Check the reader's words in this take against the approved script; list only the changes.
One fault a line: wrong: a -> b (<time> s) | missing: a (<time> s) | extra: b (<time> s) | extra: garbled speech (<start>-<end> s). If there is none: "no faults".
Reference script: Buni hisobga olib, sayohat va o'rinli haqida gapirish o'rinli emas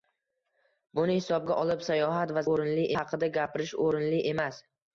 no faults